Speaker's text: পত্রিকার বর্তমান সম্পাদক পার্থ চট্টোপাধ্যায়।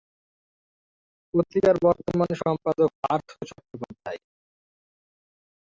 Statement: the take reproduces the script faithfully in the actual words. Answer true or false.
true